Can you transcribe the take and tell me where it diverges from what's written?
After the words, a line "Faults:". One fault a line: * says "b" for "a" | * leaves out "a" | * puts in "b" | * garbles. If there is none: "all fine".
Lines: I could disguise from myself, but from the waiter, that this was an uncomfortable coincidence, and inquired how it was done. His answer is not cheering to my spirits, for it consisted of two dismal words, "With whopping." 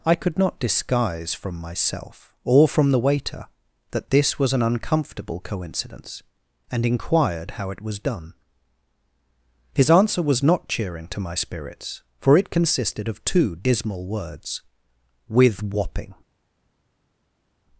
I could not disguise from myself, or from the waiter, that this was an uncomfortable coincidence, and inquired how it was done. His answer was not cheering to my spirits, for it consisted of two dismal words, "With whopping."
Faults:
* puts in "not"
* says "or" for "but"
* says "was" for "is"